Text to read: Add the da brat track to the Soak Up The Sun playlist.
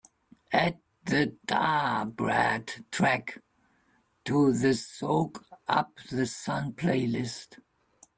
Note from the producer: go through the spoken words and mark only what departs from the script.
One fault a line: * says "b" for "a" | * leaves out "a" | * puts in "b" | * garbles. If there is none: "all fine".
all fine